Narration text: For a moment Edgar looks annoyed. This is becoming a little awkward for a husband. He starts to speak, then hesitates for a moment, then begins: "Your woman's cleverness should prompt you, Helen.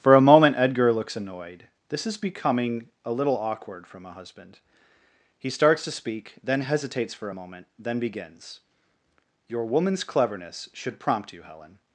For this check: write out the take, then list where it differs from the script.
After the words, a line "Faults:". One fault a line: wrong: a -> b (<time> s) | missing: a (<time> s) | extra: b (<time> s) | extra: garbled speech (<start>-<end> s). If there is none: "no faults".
For a moment Edgar looks annoyed. This is becoming a little awkward from a husband. He starts to speak, then hesitates for a moment, then begins: "Your woman's cleverness should prompt you, Helen.
Faults:
wrong: for -> from (3.9 s)